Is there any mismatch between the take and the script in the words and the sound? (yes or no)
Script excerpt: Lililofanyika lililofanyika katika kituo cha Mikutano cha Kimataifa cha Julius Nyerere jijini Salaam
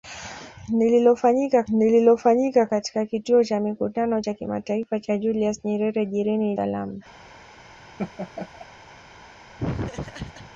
yes